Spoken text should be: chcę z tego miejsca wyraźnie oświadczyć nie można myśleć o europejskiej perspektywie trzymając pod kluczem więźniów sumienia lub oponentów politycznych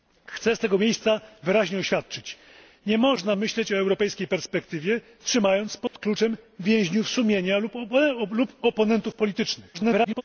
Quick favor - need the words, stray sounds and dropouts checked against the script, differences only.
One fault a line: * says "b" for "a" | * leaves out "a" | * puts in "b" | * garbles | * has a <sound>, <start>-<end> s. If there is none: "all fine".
* has a dropout, 5.9-5.9 s
* garbles